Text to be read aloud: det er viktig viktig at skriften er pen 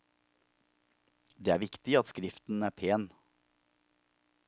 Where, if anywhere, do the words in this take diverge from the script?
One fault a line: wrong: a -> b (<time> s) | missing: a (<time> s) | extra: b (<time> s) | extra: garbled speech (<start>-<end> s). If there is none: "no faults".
missing: viktig (2.0 s)